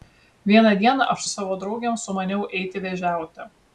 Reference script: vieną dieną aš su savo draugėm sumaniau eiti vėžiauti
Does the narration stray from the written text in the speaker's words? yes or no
no